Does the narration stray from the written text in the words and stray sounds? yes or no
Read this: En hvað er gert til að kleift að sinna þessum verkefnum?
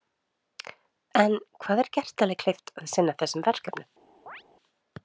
yes